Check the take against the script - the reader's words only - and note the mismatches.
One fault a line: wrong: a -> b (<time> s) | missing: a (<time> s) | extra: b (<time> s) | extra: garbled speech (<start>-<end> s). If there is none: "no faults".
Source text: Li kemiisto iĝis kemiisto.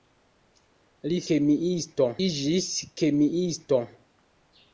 no faults